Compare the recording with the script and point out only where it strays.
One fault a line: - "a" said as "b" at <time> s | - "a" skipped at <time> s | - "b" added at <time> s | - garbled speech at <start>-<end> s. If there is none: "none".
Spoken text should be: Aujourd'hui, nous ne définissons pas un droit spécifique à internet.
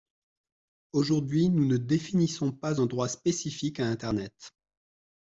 none